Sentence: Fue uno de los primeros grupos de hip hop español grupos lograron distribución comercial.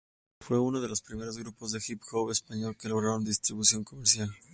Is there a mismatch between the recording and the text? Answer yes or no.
yes